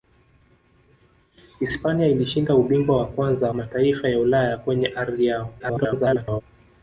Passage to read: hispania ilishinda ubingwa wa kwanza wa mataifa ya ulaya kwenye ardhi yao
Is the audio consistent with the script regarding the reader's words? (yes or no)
no